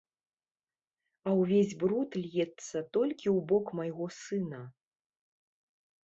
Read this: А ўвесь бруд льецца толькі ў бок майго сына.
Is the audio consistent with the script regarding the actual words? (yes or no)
yes